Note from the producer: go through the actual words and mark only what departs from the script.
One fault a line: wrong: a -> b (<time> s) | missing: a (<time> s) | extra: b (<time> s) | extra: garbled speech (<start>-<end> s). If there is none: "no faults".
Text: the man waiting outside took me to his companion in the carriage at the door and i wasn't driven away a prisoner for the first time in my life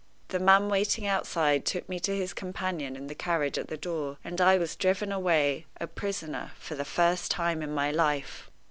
wrong: wasn't -> was (4.5 s)